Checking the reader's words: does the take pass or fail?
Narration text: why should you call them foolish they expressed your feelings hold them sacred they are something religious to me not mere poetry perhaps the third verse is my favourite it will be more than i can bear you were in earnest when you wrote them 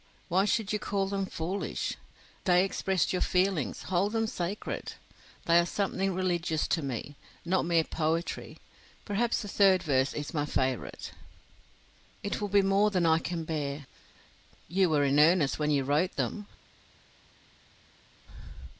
pass